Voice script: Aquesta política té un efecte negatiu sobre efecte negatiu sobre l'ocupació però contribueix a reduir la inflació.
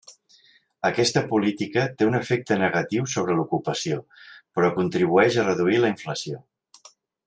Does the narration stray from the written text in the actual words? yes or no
yes